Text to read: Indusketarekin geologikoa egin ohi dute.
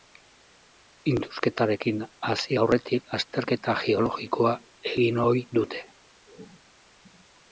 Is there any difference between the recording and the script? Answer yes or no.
yes